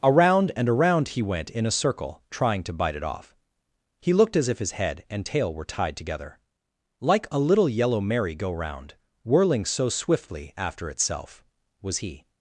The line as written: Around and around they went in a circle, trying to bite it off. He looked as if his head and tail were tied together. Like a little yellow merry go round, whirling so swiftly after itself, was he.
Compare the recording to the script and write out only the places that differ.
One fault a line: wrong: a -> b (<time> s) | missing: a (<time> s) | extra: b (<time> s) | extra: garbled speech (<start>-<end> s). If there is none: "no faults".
wrong: they -> he (1.1 s)